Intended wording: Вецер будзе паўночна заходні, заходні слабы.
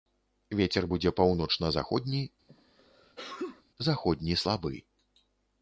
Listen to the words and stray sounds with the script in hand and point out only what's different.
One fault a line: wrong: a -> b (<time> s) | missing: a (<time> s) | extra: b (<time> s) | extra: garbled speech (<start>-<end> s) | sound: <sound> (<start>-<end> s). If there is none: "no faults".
sound: sneeze (2.5-3.6 s)